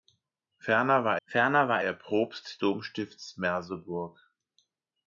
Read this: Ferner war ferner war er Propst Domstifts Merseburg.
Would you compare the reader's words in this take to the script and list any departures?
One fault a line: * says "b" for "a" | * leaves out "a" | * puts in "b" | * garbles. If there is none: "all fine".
all fine